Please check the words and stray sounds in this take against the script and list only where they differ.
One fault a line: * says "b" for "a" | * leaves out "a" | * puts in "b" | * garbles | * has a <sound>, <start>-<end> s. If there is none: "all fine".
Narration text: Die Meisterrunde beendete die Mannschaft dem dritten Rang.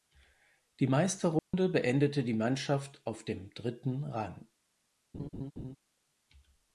* has a dropout, 1.4-1.5 s
* puts in "auf"
* has a laugh, 5.1-5.8 s